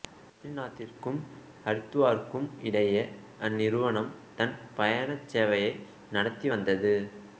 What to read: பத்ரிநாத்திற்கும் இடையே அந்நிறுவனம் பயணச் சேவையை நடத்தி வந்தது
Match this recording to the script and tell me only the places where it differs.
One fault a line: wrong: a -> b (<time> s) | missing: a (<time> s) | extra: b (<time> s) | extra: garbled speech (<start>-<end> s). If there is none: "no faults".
extra: ஹரித்துவாருக்கும் (1.6 s)
extra: தன் (4.3 s)